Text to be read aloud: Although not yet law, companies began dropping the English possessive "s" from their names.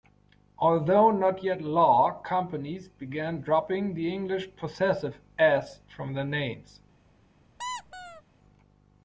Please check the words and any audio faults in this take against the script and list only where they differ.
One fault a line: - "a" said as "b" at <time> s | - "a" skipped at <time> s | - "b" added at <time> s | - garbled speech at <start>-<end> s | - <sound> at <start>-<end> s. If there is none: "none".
- squeak at 7.6-8.2 s